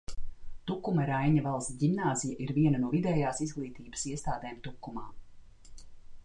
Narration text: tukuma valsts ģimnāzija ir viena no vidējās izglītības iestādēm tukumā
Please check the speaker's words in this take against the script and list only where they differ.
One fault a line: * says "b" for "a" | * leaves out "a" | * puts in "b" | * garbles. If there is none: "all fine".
* puts in "raiņa"